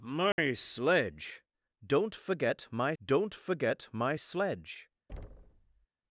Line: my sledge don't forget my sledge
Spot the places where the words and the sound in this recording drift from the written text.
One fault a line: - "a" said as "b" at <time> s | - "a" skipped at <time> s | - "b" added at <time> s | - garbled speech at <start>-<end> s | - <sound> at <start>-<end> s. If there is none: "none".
- dropout at 0.3-0.4 s
- "don't forget my" added at 3.0 s
- thud at 5.1-5.9 s